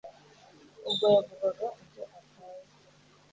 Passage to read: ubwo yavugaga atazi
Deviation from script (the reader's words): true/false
true